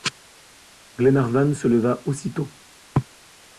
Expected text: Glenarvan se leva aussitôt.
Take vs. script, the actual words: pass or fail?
pass